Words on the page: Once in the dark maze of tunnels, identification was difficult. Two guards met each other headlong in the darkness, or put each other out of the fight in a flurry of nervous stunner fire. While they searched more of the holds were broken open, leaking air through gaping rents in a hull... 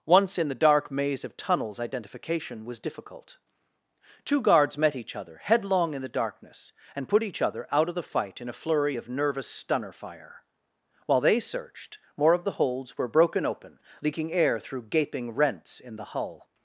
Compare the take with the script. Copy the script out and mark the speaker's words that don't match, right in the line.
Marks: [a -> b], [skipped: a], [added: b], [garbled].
Once in the dark maze of tunnels, identification was difficult. Two guards met each other headlong in the darkness, [or -> and] put each other out of the fight in a flurry of nervous stunner fire. While they searched more of the holds were broken open, leaking air through gaping rents in [a -> the] hull...